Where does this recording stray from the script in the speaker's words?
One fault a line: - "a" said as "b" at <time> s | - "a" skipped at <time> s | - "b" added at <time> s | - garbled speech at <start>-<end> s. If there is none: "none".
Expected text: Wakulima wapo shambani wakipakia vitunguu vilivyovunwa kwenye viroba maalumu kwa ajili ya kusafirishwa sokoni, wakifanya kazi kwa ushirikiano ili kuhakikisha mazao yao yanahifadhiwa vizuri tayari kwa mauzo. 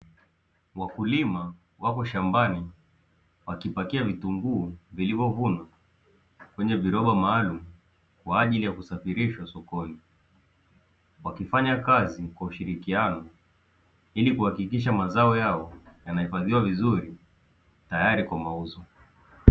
none